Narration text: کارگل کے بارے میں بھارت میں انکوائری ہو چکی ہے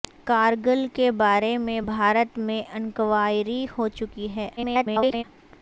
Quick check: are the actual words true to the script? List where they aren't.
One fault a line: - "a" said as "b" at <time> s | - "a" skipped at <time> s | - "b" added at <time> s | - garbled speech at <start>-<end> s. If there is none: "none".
- garbled speech at 4.6-5.2 s